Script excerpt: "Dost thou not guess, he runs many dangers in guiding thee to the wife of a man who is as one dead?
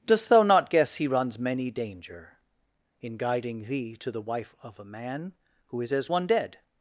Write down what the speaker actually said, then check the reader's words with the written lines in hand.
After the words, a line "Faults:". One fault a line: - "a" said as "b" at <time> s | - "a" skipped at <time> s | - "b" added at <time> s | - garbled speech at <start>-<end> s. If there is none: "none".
"Dost thou not guess, he runs many danger in guiding thee to the wife of a man who is as one dead?
Faults:
- "dangers" said as "danger" at 1.7 s